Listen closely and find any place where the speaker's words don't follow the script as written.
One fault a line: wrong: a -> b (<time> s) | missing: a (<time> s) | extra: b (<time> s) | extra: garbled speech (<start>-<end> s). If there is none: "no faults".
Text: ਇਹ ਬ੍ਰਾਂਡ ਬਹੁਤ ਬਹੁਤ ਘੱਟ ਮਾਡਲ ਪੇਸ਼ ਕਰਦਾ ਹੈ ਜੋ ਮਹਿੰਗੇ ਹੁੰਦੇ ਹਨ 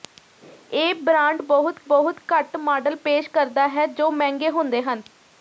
no faults